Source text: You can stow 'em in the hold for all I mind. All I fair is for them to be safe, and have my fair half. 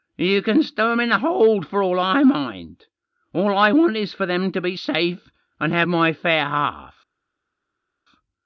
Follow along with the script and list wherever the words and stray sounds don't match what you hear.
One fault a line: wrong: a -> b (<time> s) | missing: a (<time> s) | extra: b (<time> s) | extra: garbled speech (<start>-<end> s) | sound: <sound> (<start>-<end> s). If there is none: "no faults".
wrong: fair -> want (3.7 s)